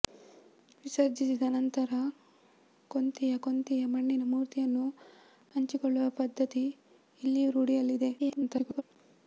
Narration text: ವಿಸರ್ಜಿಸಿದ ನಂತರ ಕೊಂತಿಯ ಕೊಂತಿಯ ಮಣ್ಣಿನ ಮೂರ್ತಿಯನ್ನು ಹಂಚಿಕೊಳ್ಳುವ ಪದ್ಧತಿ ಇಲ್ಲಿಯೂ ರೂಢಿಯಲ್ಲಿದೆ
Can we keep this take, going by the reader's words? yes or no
no